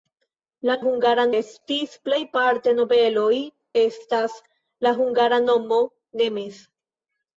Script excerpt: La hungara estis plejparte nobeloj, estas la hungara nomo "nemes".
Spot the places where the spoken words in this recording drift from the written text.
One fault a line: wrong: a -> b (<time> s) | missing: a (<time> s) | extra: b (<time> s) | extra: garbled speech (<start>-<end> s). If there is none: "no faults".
no faults